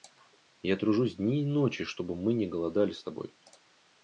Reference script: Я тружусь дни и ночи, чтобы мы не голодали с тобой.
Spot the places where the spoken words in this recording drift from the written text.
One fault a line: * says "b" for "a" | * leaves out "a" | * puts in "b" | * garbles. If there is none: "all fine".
all fine